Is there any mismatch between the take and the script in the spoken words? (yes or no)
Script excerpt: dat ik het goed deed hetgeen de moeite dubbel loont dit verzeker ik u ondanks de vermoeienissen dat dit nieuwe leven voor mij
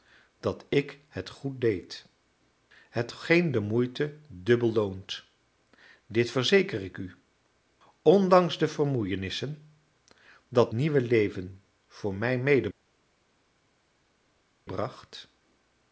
yes